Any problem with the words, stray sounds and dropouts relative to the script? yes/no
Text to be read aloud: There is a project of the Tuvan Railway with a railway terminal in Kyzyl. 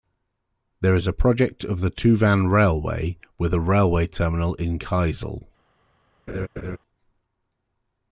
yes